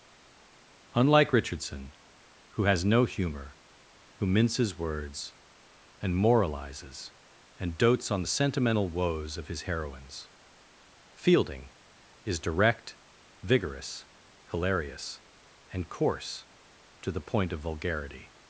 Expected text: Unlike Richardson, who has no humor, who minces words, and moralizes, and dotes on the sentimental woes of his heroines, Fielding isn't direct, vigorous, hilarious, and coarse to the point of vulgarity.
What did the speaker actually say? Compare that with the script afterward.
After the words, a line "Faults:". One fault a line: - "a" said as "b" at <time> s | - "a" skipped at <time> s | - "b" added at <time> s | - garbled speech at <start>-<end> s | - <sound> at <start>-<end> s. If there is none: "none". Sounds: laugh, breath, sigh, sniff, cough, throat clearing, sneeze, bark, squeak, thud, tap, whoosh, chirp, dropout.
Unlike Richardson, who has no humor, who minces words, and moralizes, and dotes on the sentimental woes of his heroines, Fielding is direct, vigorous, hilarious, and coarse to the point of vulgarity.
Faults:
- "isn't" said as "is" at 12.2 s